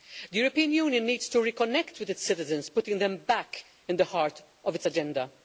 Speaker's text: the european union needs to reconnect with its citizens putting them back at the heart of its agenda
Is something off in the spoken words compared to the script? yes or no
no